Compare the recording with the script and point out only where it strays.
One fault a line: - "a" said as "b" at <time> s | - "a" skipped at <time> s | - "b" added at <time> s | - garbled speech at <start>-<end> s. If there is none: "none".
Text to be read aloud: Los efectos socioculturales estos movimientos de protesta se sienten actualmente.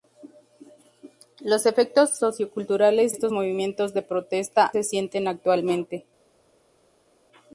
none